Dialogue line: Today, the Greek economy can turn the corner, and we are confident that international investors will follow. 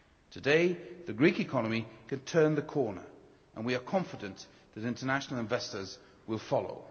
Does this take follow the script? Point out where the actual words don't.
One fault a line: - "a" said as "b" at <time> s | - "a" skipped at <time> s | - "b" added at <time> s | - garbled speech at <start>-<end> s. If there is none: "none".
none